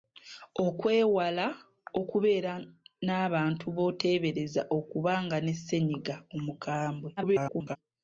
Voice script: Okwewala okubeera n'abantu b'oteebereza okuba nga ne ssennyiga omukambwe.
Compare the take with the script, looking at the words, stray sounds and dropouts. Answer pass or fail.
fail